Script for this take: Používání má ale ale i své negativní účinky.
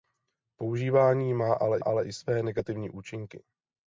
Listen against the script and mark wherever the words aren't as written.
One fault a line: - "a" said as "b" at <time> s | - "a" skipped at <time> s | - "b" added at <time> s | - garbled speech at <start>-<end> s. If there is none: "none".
none